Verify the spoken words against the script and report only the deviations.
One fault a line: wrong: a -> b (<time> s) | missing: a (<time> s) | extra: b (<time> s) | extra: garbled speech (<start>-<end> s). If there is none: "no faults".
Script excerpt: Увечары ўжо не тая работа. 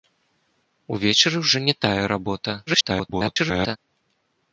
extra: garbled speech (2.7-3.8 s)